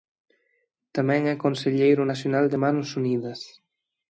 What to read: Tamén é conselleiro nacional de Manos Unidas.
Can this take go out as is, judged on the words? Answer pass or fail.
pass